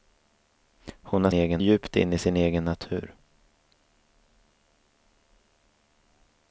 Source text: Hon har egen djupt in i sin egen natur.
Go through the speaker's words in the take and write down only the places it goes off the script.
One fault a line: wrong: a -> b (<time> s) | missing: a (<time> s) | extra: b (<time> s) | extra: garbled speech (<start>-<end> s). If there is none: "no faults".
no faults